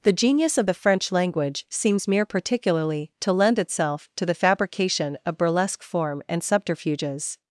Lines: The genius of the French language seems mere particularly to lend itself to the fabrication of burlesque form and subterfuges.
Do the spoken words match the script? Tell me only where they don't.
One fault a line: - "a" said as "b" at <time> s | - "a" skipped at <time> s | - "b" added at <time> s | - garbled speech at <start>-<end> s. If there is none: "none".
none